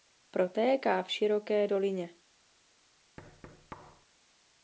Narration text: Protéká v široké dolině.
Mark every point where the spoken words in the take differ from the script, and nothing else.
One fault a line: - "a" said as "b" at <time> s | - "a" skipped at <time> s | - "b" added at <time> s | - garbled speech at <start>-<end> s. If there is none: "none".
none